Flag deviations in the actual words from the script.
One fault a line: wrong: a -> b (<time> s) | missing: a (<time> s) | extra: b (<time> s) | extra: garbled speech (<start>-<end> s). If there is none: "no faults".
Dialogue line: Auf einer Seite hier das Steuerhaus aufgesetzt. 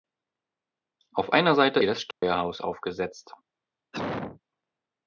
no faults